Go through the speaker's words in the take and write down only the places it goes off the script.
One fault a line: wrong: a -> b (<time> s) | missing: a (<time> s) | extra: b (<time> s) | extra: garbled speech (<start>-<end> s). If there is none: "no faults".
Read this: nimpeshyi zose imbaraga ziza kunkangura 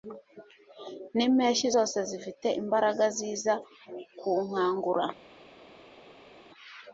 extra: zifite (2.1 s)